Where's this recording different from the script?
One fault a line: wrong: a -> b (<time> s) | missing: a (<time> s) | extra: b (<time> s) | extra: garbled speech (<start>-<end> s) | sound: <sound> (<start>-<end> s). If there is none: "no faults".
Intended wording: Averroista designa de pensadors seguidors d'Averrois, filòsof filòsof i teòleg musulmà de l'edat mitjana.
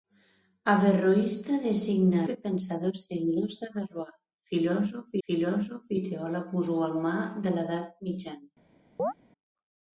sound: chirp (9.0-9.1 s)